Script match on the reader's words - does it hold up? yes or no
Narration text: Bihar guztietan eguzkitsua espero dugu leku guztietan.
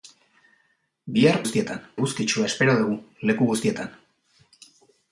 yes